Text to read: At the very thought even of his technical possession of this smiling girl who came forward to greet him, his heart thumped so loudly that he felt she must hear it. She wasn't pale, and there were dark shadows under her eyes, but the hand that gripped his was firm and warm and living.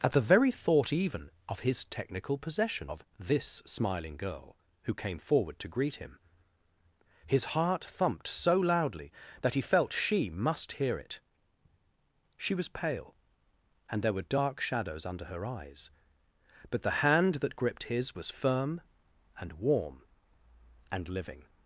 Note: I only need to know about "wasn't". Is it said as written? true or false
false